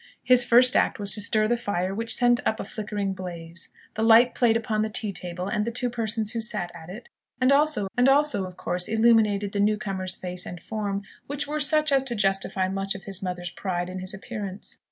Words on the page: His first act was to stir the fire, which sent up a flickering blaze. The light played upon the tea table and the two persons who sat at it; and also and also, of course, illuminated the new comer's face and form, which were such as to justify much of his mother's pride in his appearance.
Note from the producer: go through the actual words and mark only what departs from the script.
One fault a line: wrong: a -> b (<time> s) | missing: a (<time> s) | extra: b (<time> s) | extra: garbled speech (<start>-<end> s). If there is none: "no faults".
no faults